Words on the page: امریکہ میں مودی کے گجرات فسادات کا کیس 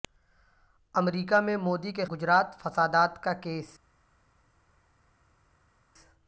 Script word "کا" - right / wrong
right